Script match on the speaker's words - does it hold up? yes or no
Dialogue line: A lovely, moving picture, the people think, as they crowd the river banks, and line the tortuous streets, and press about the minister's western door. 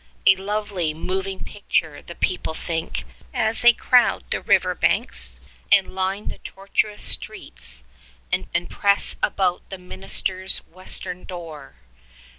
no